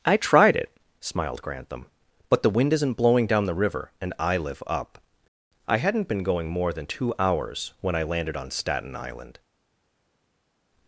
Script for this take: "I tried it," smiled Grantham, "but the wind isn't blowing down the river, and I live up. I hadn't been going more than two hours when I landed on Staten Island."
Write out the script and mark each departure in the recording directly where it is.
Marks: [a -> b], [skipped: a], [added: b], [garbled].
"I tried it," smiled Grantham, "but the wind isn't blowing down the river, and I live up. I hadn't been going more than two hours when I landed on Staten Island."